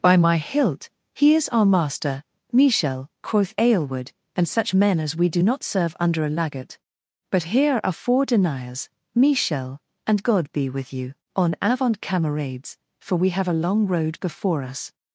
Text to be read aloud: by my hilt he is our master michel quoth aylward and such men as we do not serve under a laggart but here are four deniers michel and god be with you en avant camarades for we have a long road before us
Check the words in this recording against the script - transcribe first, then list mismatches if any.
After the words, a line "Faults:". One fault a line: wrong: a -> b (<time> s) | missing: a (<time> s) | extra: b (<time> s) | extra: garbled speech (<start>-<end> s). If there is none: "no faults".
by my hilt he is our master michel quoth aylward and such men as we do not serve under a laggart but here are four deniers michel and god be with you en avant camarades for we have a long road before us
Faults:
no faults